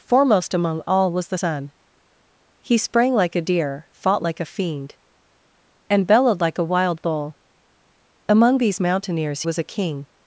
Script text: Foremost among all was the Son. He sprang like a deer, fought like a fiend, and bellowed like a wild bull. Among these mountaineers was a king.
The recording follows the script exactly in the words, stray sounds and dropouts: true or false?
true